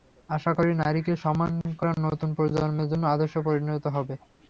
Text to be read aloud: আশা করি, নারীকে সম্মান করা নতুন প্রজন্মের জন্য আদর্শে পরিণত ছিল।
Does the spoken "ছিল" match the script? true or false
false